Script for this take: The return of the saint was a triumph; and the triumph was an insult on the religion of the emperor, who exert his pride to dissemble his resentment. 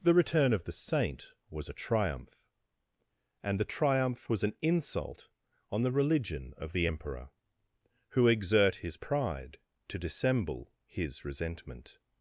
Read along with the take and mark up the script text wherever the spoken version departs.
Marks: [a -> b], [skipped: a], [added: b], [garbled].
The return of the saint was a triumph; and the triumph was an insult on the religion of the emperor, who exert his pride to dissemble his resentment.